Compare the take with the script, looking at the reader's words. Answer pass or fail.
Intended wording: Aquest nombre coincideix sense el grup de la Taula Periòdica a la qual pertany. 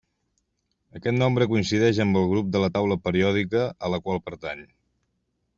fail